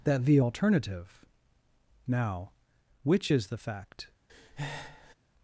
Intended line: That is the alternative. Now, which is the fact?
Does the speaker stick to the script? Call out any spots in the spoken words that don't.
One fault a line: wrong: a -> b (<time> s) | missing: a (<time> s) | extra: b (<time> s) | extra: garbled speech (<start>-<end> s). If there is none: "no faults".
missing: is (0.2 s)